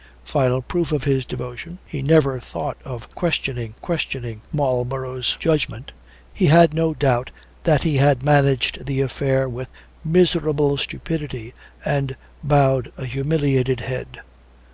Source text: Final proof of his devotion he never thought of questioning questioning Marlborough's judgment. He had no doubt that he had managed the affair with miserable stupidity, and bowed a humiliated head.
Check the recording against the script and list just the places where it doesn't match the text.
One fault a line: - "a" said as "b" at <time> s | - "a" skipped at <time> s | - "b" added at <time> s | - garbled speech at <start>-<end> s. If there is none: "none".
none